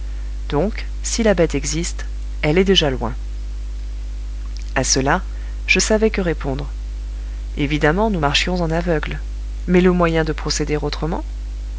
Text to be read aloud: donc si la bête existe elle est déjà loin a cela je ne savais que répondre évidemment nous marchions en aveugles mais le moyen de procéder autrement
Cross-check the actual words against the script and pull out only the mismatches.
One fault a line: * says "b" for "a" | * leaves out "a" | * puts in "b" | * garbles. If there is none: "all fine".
* leaves out "ne"